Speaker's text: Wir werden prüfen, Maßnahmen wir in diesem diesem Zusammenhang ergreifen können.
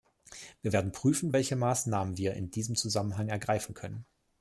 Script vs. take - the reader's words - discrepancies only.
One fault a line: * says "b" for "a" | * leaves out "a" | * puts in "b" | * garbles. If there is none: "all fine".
* puts in "welche"
* leaves out "diesem"